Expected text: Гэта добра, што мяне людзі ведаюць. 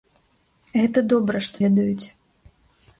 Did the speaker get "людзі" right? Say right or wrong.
wrong